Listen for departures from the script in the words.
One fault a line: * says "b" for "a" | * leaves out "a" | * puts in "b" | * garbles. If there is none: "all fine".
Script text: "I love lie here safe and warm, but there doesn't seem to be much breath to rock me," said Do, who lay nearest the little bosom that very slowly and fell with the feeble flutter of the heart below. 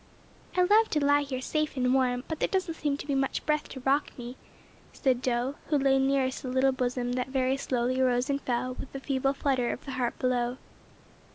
* puts in "to"
* puts in "rose"